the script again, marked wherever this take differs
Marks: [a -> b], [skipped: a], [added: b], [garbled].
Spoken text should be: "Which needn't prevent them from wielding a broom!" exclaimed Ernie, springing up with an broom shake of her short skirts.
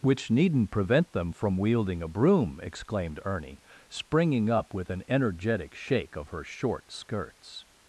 "Which needn't prevent them from wielding a broom!" exclaimed Ernie, springing up with an [broom -> energetic] shake of her short skirts.